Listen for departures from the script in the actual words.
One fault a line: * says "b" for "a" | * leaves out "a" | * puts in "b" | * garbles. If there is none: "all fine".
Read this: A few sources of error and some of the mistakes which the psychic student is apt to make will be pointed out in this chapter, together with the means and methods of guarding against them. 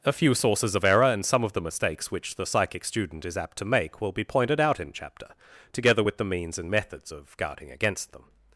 * leaves out "this"